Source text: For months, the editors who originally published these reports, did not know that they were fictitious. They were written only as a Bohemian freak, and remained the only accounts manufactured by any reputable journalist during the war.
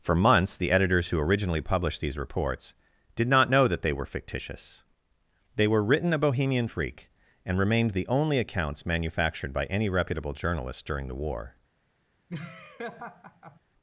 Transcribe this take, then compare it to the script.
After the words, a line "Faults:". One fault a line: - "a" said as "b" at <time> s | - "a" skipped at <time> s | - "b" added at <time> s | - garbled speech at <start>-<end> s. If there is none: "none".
For months, the editors who originally published these reports, did not know that they were fictitious. They were written a Bohemian freak, and remained the only accounts manufactured by any reputable journalist during the war.
Faults:
- "only as" skipped at 6.1 s